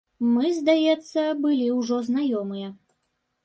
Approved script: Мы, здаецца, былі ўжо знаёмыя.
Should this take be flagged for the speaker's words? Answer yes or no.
no